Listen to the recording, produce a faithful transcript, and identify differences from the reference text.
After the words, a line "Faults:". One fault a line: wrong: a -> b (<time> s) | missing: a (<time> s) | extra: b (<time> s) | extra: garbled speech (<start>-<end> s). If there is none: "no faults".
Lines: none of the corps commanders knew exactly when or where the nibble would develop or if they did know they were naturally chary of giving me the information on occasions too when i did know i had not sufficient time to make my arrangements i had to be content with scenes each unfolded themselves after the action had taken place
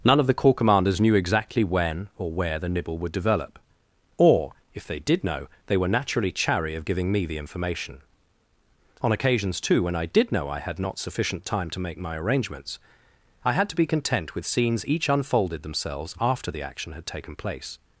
none of the corps commanders knew exactly when or where the nibble would develop or if they did know they were naturally chary of giving me the information on occasions too when i did know i had not sufficient time to make my arrangements i had to be content with scenes each unfolded themselves after the action had taken place
Faults:
no faults